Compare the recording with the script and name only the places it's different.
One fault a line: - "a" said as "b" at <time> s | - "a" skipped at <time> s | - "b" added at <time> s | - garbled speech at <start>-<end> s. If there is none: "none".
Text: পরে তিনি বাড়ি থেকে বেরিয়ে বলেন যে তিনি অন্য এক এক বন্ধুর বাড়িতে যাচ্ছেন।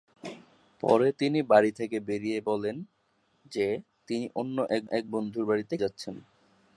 none